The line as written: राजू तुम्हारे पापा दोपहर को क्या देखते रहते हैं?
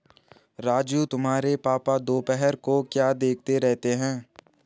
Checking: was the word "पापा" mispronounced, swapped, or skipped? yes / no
no